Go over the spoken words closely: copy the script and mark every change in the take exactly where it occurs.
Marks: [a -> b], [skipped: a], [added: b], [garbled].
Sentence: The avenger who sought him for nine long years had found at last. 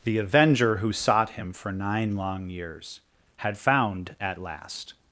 The avenger who sought him for nine long years had found at last.